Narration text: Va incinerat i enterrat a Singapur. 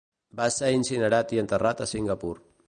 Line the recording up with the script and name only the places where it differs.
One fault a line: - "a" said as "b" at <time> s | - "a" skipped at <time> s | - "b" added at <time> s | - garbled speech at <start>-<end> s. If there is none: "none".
- "ser" added at 0.6 s